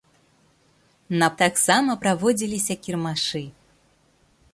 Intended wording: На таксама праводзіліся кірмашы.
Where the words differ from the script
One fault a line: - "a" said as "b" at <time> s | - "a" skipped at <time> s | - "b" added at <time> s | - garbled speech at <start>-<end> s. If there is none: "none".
none